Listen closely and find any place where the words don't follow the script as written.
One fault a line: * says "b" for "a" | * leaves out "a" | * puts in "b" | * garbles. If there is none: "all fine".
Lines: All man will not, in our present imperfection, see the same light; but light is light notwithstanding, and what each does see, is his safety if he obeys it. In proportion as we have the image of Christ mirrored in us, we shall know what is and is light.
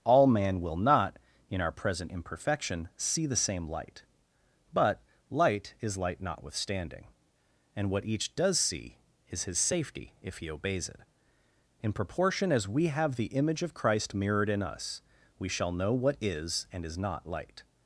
* puts in "not"